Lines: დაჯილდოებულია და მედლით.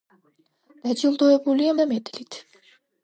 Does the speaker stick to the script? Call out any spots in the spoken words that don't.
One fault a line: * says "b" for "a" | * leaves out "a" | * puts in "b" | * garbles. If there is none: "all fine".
all fine